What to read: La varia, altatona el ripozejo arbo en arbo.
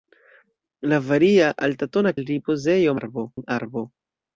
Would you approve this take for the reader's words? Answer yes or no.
yes